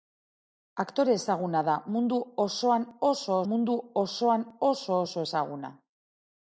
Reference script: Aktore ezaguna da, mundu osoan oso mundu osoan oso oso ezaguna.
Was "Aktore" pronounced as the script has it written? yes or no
yes